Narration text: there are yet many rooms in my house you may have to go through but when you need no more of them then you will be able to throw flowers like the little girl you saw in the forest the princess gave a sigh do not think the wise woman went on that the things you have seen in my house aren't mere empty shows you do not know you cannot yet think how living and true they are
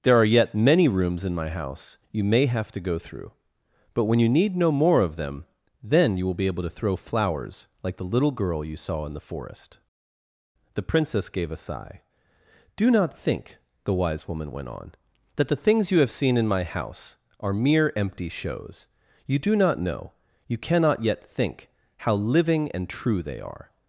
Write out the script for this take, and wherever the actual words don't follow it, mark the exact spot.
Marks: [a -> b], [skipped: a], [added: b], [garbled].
there are yet many rooms in my house you may have to go through but when you need no more of them then you will be able to throw flowers like the little girl you saw in the forest the princess gave a sigh do not think the wise woman went on that the things you have seen in my house [aren't -> are] mere empty shows you do not know you cannot yet think how living and true they are